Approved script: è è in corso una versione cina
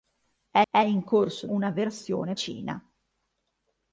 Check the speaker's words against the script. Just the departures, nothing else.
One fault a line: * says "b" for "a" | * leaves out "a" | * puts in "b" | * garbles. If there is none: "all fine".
all fine